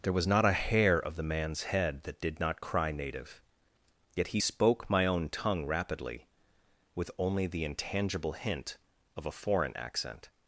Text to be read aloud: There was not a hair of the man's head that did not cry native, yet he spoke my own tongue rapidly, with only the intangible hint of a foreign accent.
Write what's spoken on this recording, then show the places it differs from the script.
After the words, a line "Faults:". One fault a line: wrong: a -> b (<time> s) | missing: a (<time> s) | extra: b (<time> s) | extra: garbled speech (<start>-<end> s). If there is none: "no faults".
There was not a hair of the man's head that did not cry native, yet he spoke my own tongue rapidly, with only the intangible hint of a foreign accent.
Faults:
no faults